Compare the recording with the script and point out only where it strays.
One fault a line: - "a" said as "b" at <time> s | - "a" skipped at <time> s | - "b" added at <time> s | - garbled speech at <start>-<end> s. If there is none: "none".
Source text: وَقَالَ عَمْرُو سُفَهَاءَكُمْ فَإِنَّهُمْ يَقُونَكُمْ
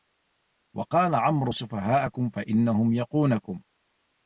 none